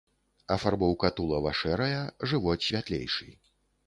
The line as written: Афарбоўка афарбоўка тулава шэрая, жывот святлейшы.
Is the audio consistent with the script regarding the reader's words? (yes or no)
no